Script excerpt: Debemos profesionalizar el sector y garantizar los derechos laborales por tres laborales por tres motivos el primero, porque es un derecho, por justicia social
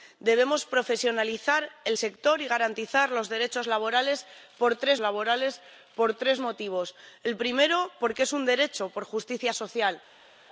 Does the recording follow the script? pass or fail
pass